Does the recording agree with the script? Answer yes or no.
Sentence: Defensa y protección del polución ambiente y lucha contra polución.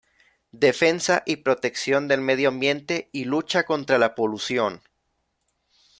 no